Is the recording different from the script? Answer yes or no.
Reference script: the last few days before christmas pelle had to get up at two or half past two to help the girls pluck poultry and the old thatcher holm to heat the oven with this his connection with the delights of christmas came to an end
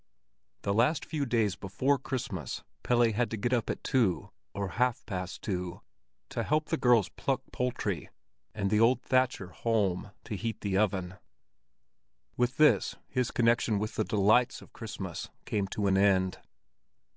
no